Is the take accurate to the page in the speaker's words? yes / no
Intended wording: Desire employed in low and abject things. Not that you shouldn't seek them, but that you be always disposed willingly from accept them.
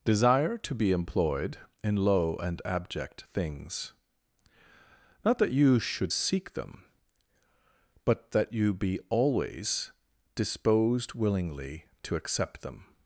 no